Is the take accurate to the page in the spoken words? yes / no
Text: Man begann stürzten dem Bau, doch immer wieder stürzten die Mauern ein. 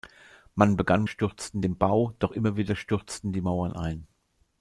yes